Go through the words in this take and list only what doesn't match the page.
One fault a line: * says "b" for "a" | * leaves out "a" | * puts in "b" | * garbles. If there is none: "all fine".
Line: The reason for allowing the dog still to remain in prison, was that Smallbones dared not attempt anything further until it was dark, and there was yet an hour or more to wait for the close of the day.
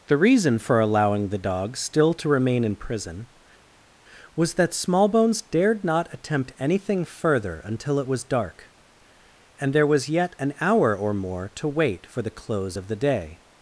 all fine